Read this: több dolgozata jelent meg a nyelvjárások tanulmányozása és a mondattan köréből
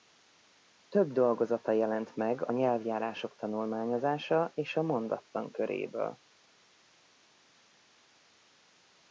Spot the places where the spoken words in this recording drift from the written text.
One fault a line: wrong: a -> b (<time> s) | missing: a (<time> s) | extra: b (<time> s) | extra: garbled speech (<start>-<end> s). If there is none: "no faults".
no faults